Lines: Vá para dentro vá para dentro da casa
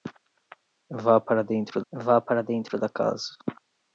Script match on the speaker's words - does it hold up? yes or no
yes